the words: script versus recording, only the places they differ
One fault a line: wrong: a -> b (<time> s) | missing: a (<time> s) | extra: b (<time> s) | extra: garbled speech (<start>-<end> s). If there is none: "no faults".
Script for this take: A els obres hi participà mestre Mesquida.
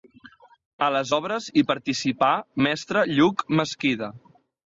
wrong: els -> les (0.9 s)
extra: Lluc (3.1 s)